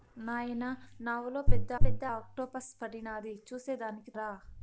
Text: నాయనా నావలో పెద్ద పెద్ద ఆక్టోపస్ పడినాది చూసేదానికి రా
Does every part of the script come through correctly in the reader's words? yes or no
yes